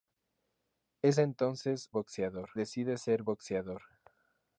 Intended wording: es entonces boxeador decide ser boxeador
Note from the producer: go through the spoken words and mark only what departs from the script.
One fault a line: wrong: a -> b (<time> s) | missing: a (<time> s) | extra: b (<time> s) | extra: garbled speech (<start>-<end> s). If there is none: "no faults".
no faults